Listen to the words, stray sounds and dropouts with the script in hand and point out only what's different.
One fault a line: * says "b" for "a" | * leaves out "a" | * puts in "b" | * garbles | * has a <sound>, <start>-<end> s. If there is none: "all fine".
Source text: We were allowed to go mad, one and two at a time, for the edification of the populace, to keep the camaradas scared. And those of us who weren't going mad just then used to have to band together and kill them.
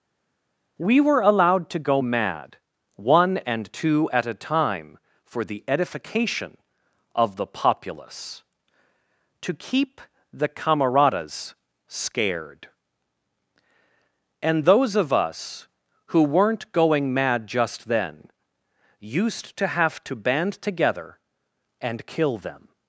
all fine